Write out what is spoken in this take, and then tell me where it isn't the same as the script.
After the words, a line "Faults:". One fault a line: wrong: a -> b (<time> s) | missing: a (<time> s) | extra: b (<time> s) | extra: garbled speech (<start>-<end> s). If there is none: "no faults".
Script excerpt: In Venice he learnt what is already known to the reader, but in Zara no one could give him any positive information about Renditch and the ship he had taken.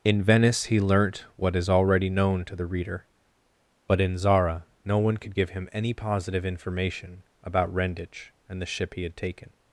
In Venice he learnt what is already known to the reader, but in Zara no one could give him any positive information about Renditch and the ship he had taken.
Faults:
no faults